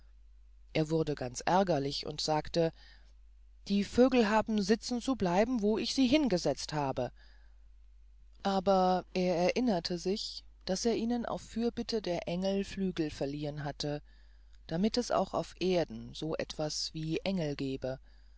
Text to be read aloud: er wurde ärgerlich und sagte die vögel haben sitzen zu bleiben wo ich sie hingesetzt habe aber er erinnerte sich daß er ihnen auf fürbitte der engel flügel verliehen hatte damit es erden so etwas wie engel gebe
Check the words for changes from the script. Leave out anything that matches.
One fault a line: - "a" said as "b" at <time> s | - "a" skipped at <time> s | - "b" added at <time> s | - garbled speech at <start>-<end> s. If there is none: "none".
- "ganz" added at 1.1 s
- "auch auf" added at 15.1 s